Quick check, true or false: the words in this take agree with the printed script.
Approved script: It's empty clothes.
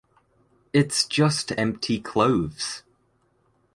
false